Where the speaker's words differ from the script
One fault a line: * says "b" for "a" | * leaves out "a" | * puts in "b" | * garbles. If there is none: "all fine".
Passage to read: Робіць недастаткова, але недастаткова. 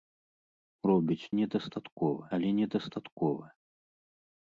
all fine